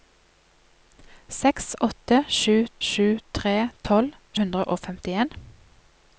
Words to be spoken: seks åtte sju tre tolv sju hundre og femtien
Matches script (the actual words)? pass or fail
fail